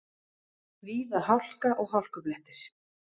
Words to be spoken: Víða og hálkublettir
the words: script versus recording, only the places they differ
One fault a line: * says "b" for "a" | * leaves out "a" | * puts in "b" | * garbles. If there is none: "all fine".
* puts in "hálka"